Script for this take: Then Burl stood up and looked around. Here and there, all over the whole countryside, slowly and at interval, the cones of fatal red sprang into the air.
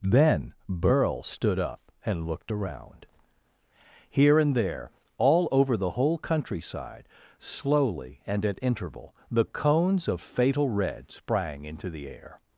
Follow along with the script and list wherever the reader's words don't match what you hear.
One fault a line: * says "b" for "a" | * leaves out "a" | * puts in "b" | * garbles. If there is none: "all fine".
all fine